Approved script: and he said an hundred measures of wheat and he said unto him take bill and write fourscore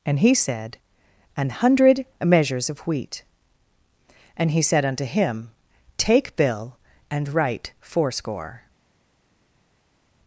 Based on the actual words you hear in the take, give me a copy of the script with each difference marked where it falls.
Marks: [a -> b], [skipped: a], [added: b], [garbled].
and he said an hundred measures of wheat and he said unto him take bill and write fourscore